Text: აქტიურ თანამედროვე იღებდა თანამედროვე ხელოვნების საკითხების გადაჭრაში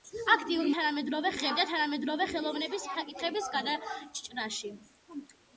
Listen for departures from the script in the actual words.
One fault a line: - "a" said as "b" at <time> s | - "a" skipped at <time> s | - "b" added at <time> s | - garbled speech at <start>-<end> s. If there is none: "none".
none